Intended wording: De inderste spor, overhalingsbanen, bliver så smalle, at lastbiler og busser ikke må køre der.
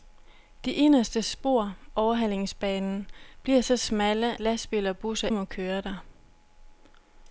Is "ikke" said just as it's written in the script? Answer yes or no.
no